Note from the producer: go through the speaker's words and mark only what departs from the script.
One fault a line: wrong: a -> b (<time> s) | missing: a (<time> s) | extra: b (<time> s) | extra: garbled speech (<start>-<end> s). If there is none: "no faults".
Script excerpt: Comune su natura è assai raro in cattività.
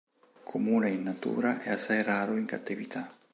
wrong: su -> in (0.9 s)